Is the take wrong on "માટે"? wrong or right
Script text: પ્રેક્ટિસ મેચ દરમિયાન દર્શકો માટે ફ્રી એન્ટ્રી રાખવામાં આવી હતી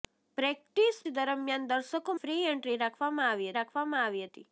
wrong